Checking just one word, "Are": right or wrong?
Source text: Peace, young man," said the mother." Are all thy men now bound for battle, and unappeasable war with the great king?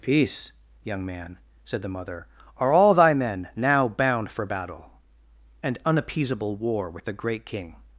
right